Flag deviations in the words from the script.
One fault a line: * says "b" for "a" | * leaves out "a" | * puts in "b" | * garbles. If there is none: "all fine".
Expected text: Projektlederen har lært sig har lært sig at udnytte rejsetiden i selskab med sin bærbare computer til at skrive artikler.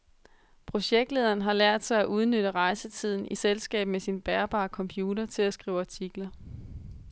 * leaves out "har lært sig"